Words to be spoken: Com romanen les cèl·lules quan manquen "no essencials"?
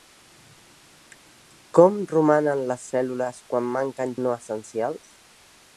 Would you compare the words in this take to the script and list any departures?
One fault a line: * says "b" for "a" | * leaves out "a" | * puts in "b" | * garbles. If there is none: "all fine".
all fine